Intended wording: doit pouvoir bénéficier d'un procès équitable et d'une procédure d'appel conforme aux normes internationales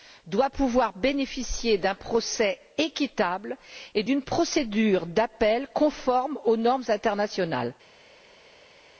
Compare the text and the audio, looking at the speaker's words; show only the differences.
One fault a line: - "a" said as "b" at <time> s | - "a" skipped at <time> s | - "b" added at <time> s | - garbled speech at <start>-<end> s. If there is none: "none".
none